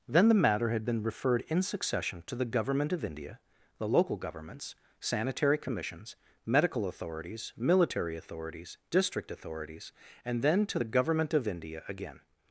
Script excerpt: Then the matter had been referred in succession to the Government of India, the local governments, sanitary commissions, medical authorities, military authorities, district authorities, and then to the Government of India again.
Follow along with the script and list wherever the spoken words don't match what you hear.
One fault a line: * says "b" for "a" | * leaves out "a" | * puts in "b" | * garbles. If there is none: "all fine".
all fine